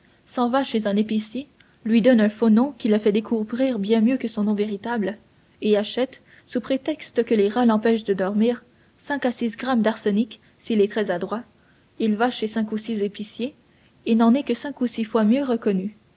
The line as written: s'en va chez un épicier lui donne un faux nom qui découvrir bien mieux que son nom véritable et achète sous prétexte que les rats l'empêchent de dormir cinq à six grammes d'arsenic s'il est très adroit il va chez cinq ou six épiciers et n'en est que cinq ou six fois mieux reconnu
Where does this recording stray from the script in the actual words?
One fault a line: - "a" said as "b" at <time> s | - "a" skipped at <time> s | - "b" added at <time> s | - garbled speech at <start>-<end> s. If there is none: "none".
- "le fait" added at 2.9 s